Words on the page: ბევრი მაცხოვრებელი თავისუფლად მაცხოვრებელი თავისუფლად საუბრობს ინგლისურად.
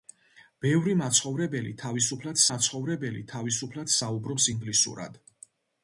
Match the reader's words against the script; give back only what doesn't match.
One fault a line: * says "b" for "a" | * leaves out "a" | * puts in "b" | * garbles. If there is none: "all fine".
all fine